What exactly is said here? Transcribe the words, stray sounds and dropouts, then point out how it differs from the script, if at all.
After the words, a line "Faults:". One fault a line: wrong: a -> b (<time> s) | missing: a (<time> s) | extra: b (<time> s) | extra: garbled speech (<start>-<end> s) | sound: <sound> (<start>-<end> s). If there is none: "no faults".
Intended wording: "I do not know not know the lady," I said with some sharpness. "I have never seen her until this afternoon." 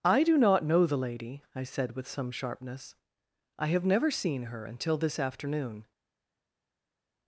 "I do not know the lady," I said with some sharpness. "I have never seen her until this afternoon."
Faults:
missing: not know (0.9 s)